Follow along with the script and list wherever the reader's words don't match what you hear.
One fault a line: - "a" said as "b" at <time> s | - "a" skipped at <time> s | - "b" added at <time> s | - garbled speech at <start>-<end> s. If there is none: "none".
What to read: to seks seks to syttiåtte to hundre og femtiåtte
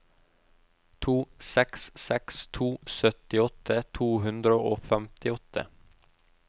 none